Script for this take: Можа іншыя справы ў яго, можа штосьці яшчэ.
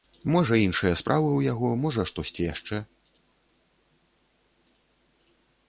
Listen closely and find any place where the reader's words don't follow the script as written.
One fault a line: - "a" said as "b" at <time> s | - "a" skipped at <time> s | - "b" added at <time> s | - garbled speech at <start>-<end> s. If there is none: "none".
none